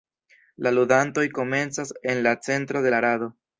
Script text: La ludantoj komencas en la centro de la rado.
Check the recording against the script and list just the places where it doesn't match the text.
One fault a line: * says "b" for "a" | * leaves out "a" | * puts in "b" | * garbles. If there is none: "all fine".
all fine